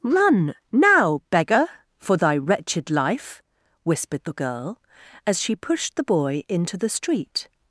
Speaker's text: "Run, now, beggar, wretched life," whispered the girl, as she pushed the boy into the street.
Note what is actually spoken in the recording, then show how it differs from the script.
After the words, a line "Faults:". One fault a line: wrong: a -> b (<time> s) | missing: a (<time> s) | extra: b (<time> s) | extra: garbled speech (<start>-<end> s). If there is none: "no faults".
"Run, now, beggar, for thy wretched life," whispered the girl, as she pushed the boy into the street.
Faults:
extra: for thy (2.0 s)